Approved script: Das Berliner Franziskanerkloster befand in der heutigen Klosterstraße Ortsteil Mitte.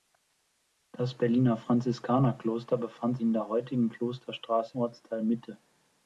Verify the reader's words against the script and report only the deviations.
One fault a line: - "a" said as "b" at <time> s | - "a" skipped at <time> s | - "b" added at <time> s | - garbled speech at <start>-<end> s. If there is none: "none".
none